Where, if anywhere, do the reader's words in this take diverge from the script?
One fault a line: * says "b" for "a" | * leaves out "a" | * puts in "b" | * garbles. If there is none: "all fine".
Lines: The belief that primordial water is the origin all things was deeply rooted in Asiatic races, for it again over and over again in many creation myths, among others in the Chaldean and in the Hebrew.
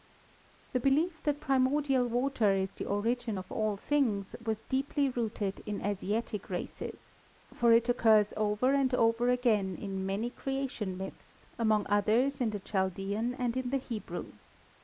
* puts in "of"
* says "occurs" for "again"